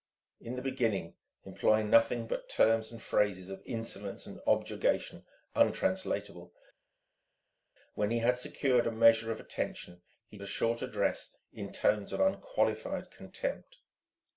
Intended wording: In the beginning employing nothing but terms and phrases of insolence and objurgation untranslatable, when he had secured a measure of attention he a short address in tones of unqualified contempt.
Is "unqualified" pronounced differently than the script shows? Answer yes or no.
no